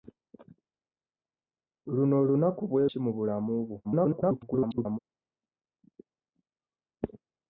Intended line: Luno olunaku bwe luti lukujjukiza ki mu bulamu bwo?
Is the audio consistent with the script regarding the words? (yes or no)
no